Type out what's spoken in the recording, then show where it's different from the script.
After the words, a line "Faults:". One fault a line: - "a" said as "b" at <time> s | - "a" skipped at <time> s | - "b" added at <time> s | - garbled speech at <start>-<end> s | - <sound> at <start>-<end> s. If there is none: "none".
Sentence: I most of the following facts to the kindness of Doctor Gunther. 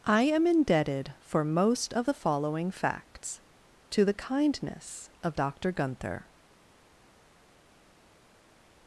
I am indebted for most of the following facts to the kindness of Doctor Gunther.
Faults:
- "am indebted for" added at 0.2 s